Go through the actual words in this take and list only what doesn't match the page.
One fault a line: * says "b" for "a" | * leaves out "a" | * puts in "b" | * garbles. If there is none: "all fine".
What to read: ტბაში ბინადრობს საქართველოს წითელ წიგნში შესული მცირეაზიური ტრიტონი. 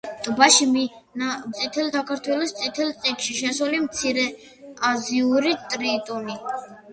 * says "წითელ" for "ბინადრობს"